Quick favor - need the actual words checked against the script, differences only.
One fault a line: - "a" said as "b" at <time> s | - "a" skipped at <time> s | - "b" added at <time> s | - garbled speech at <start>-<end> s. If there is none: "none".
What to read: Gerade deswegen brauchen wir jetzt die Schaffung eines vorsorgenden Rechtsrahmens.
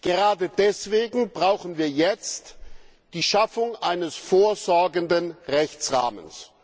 none